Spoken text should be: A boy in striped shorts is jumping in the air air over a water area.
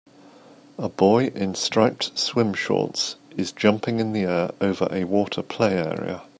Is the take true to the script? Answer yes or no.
no